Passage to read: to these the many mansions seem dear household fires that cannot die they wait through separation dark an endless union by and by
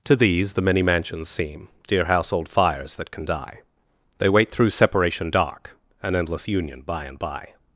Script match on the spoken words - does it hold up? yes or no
no